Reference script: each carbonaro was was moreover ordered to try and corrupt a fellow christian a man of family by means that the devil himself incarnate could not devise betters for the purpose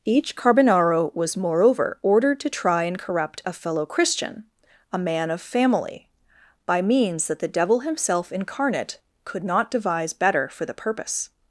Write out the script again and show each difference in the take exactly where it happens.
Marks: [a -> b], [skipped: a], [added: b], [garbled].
each carbonaro was [skipped: was] moreover ordered to try and corrupt a fellow christian a man of family by means that the devil himself incarnate could not devise [betters -> better] for the purpose